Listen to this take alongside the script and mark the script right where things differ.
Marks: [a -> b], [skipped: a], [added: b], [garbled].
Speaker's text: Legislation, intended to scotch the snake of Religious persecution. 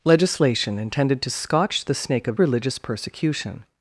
Legislation, intended to scotch the snake of Religious persecution.